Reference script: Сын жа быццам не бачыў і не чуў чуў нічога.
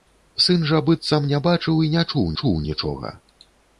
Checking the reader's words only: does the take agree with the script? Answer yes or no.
yes